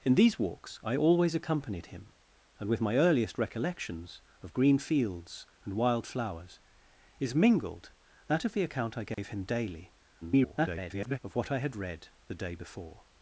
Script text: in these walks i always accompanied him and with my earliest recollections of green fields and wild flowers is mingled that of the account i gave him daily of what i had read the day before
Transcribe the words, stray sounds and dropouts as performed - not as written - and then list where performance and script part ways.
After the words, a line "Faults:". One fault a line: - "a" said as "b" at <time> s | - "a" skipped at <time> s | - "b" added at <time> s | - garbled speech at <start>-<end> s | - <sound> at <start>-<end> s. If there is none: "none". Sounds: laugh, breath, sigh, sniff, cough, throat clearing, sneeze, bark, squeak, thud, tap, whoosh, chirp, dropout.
in these walks i always accompanied him and with my earliest recollections of green fields and wild flowers is mingled that of the account i gave him daily [garbled] of what i had read the day before
Faults:
- dropout at 9.1-9.2 s
- garbled speech at 10.2-11.2 s